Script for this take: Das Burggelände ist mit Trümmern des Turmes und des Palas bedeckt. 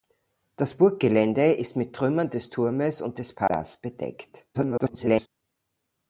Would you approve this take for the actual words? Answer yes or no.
no